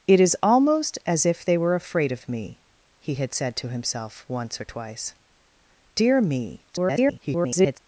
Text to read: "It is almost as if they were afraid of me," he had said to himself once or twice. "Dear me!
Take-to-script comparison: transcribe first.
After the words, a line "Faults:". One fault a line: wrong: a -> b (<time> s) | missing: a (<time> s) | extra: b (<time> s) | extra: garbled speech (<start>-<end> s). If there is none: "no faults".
"It is almost as if they were afraid of me," he had said to himself once or twice. "Dear me! [garbled]
Faults:
extra: garbled speech (6.7-7.8 s)